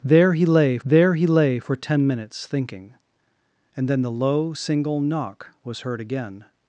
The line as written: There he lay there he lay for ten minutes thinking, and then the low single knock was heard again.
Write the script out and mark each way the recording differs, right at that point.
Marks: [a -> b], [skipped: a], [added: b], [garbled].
There he lay there he lay for ten minutes thinking, and then the low single knock was heard again.